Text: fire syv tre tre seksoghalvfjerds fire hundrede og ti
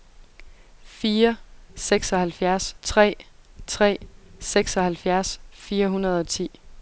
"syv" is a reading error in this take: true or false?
true